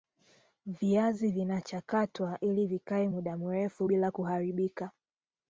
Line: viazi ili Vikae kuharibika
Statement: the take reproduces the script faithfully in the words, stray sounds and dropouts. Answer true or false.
false